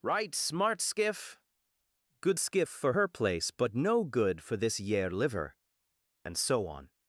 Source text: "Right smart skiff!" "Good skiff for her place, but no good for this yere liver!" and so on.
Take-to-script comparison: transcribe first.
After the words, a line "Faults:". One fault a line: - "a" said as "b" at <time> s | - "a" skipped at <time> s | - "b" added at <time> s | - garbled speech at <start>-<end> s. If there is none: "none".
"Right smart skiff!" "Good skiff for her place, but no good for this yere liver!" and so on.
Faults:
none